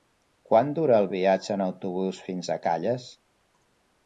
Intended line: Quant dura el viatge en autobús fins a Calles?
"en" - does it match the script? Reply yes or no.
yes